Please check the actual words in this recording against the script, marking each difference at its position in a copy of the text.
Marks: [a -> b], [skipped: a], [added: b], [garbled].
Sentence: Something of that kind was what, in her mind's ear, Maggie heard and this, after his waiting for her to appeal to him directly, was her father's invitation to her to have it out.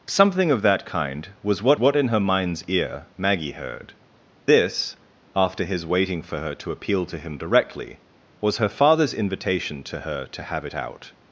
Something of that kind was what, [added: what] in her mind's ear, Maggie heard [skipped: and] this, after his waiting for her to appeal to him directly, was her father's invitation to her to have it out.